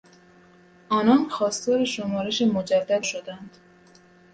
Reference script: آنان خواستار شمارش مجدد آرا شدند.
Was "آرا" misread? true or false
true